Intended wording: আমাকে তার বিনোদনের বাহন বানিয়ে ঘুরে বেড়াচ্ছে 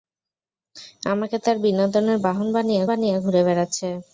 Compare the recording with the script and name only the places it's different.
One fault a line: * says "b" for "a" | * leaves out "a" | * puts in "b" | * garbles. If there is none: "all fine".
* puts in "বানিয়ে"